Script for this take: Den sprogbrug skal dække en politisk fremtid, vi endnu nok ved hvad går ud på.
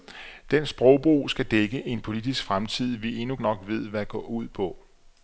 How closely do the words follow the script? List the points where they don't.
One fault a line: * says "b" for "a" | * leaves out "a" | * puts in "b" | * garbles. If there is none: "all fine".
all fine